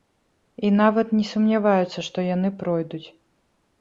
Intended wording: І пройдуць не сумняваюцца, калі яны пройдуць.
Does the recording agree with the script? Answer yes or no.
no